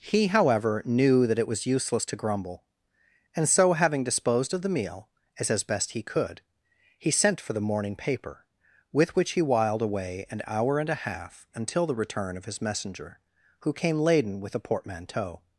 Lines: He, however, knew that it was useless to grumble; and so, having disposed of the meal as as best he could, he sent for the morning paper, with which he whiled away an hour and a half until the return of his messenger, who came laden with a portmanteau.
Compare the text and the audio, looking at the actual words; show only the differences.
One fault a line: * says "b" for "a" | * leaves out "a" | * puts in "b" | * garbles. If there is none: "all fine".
all fine